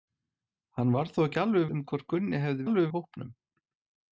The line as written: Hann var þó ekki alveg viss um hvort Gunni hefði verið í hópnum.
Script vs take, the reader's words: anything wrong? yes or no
yes